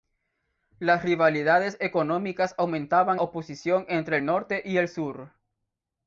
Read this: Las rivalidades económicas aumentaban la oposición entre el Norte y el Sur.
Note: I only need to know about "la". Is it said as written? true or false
false